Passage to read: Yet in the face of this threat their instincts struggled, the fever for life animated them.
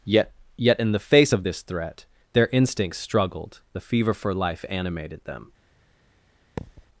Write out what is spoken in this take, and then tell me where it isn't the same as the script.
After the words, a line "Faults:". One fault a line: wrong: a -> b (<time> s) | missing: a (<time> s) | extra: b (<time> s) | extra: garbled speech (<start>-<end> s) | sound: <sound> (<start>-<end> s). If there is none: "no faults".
Yet yet in the face of this threat their instincts struggled, the fever for life animated them.
Faults:
extra: yet (0.6 s)
sound: thud (6.6-6.9 s)